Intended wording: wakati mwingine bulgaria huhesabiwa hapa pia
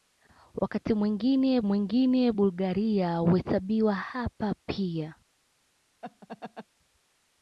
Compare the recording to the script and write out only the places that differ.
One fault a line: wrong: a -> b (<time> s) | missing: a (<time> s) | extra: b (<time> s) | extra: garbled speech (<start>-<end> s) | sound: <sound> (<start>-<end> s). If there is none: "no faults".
extra: mwingine (1.6 s)
sound: laugh (6.0-6.7 s)